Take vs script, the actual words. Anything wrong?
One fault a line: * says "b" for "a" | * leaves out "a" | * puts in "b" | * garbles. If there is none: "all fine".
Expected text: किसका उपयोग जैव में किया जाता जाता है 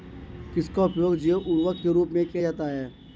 * puts in "उर्वरक के रूप"
* leaves out "जाता"